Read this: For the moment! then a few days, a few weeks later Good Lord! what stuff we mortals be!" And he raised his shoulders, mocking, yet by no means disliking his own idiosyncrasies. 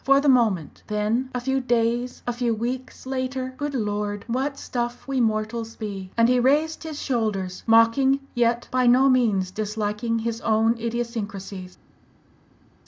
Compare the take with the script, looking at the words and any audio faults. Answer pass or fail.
pass